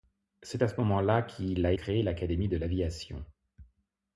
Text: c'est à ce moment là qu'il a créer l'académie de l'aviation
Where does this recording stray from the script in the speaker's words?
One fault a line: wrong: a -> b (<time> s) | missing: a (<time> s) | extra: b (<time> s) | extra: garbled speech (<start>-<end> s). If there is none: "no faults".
no faults